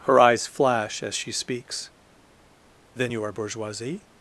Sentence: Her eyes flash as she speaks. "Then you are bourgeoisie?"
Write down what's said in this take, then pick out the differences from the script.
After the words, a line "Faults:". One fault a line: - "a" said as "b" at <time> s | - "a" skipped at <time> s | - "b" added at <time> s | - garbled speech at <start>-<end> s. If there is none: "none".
Her eyes flash as she speaks. "Then you are bourgeoisie?"
Faults:
none